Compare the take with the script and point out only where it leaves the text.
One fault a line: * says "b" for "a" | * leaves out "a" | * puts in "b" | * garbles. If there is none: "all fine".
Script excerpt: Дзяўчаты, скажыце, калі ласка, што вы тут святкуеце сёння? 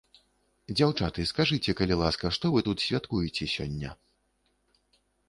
all fine